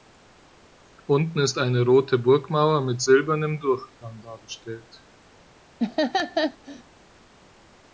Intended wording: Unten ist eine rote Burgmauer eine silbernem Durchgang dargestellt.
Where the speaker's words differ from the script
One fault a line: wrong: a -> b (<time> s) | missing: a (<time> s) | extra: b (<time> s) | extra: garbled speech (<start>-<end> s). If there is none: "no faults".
wrong: eine -> mit (2.8 s)